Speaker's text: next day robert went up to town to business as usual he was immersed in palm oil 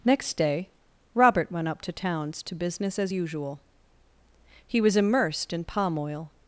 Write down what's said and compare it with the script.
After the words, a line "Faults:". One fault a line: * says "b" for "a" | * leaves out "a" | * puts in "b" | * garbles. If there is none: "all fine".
next day robert went up to towns to business as usual he was immersed in palm oil
Faults:
* says "towns" for "town"